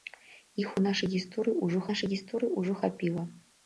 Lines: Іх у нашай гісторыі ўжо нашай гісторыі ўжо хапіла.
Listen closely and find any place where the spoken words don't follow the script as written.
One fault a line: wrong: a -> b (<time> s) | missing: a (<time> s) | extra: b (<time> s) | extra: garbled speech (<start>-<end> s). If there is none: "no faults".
no faults